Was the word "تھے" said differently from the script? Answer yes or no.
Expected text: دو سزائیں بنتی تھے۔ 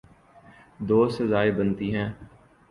yes